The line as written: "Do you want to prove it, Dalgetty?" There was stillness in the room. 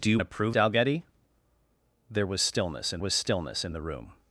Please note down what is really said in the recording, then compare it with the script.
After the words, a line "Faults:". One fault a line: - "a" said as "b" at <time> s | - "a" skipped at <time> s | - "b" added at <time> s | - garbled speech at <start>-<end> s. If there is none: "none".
"Do you to prove Dalgetty?" There was stillness in was stillness in the room.
Faults:
- "want" skipped at 0.2 s
- "it" skipped at 0.6 s
- "was stillness in" added at 3.0 s